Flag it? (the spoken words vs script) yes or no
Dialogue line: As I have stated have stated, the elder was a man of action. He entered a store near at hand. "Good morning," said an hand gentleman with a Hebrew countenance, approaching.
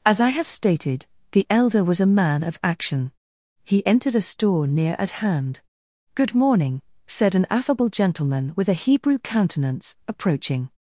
yes